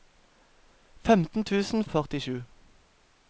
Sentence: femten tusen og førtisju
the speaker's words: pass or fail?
pass